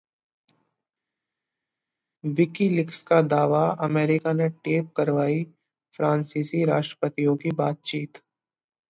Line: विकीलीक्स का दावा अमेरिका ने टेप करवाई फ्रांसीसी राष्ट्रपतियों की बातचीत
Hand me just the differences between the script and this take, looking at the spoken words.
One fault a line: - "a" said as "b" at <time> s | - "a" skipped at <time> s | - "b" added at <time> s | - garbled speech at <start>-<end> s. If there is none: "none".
none